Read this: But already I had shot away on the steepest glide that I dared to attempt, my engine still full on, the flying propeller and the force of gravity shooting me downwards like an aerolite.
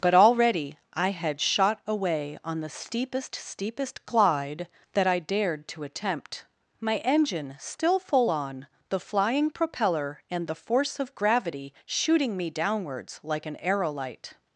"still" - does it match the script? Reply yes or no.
yes